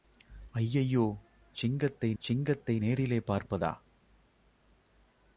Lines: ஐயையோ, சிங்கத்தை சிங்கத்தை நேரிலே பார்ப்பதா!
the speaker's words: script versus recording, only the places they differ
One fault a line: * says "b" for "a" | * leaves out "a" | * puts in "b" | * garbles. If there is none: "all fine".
all fine